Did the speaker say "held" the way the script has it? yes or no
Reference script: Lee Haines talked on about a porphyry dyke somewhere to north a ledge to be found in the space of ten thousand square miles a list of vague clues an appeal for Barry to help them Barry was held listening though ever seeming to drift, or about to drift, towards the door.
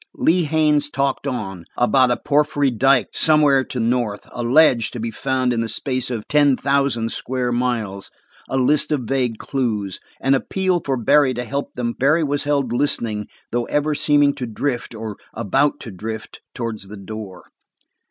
yes